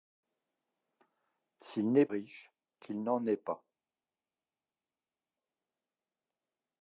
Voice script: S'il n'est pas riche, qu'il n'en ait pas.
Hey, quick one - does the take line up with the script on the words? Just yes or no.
no